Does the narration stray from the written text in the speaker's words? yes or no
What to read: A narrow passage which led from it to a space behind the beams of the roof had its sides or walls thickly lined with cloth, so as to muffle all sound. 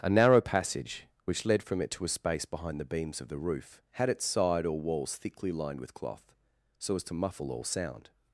yes